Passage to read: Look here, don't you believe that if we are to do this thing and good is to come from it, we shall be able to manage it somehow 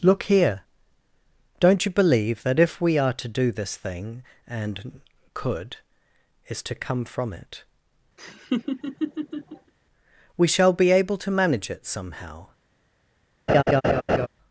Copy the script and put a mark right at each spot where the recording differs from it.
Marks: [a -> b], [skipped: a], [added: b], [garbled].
Look here, don't you believe that if we are to do this thing and [good -> could] is to come from it, we shall be able to manage it somehow